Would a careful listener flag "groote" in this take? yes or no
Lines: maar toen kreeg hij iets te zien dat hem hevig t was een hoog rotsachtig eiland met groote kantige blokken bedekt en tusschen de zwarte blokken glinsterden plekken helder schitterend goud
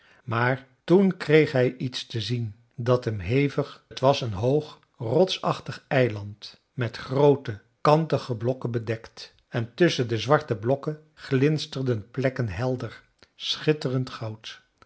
no